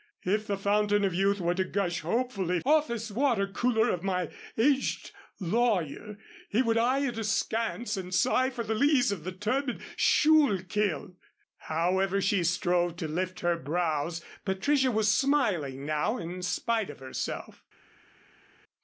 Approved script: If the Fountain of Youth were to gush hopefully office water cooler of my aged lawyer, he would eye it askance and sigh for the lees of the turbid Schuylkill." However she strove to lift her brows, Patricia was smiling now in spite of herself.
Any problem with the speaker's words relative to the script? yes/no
no